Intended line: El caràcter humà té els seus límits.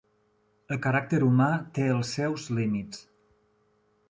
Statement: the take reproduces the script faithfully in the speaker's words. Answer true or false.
true